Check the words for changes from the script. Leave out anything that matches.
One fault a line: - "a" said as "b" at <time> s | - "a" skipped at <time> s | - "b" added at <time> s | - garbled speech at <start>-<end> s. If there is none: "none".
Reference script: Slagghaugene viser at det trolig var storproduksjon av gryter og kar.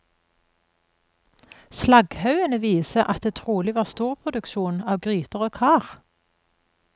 none